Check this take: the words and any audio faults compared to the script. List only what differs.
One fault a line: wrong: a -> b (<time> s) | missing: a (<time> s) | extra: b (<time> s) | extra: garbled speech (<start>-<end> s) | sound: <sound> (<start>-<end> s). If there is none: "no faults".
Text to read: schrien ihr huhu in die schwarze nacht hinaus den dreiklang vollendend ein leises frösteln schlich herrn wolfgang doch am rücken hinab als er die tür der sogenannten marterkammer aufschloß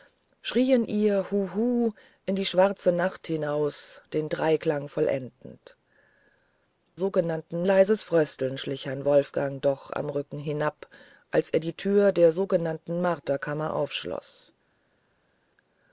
wrong: ein -> sogenannten (6.9 s)